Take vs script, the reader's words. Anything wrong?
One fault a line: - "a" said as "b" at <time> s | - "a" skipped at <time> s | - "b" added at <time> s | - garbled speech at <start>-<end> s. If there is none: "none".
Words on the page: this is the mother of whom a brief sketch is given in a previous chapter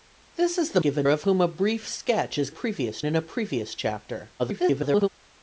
- "mother" said as "given" at 0.8 s
- "given" said as "previous" at 2.5 s
- garbled speech at 4.4-5.1 s